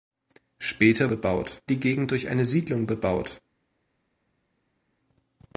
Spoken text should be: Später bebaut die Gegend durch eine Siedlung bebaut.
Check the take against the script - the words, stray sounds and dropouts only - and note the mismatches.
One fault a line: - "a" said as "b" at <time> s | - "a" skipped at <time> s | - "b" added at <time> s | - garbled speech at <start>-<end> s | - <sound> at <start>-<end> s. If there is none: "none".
none